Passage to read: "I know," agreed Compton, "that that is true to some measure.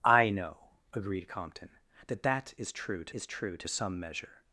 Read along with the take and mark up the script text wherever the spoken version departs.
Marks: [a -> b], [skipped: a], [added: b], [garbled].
"I know," agreed Compton, "that that is true to [added: is true to] some measure.